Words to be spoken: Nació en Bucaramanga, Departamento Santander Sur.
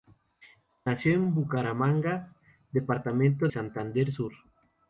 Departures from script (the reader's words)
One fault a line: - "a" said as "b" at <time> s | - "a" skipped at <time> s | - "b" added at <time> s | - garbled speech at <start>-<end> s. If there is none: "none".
none